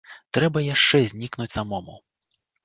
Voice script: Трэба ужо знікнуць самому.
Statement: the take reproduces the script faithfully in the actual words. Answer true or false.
false